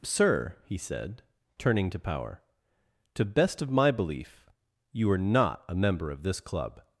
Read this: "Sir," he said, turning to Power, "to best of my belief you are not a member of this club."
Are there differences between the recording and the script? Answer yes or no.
no